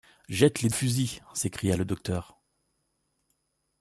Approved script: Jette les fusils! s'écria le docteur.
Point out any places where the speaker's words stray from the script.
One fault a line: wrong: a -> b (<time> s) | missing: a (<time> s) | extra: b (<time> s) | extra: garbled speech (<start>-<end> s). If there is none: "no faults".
no faults